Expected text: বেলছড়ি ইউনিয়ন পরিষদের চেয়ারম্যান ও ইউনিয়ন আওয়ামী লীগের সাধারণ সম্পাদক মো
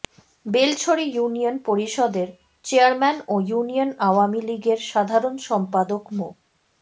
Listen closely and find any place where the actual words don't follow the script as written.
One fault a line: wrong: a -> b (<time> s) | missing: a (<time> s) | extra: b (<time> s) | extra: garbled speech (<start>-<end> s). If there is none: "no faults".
no faults